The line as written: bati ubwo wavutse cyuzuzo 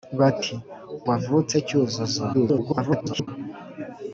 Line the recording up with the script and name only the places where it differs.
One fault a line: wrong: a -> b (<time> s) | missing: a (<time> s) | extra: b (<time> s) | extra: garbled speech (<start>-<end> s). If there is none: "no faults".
missing: ubwo (0.5 s)
extra: garbled speech (2.3-3.3 s)